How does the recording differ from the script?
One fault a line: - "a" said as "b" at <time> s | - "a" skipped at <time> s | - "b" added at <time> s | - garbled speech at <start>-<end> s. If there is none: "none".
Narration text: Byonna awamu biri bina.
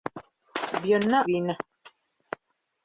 - "awamu biri" skipped at 1.2 s